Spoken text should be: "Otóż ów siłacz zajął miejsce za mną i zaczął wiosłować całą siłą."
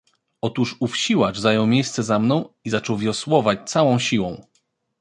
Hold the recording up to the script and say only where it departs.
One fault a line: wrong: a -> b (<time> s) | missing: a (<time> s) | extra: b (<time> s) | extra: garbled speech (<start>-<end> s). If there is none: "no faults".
no faults